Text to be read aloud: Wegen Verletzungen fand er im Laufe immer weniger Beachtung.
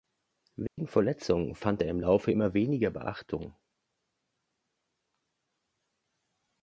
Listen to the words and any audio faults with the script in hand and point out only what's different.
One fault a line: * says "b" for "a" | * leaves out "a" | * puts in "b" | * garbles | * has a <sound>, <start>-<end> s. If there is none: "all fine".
* has a dropout, 0.7-0.8 s